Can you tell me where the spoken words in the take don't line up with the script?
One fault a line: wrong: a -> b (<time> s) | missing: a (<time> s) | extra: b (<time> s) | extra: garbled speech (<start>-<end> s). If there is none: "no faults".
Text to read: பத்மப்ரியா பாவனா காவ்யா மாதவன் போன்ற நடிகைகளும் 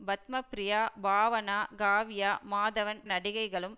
missing: போன்ற (3.0 s)